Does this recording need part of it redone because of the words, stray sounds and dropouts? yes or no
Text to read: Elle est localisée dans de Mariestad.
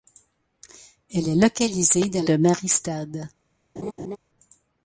yes